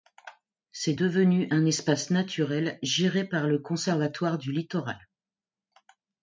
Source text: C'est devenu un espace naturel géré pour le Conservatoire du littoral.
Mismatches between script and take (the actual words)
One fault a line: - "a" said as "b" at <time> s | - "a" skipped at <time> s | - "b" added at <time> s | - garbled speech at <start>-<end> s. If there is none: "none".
- "pour" said as "par" at 3.2 s